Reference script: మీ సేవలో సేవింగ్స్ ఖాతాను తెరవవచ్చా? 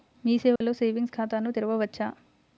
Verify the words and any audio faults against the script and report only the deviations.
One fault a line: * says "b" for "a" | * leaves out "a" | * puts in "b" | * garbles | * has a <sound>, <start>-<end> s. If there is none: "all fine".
* has a dropout, 0.6-0.6 s